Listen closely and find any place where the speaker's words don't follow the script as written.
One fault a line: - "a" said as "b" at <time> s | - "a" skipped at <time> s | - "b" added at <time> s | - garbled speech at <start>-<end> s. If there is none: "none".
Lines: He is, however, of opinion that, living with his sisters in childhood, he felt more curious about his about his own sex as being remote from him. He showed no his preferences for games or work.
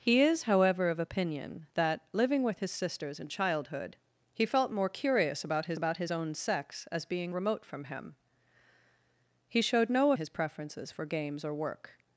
none